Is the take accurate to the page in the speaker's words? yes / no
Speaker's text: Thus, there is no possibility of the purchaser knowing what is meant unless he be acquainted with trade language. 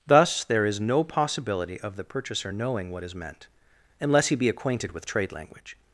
yes